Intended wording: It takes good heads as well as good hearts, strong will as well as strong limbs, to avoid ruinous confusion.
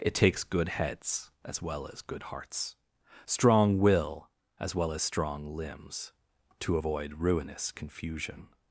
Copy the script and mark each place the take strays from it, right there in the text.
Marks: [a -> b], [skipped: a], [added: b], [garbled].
It takes good heads as well as good hearts, strong will as well as strong limbs, to avoid ruinous confusion.